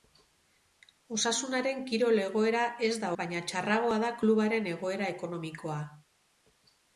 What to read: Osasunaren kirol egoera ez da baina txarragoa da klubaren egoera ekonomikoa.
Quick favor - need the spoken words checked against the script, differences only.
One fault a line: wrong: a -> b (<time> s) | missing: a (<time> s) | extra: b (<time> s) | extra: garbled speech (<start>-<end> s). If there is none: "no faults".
no faults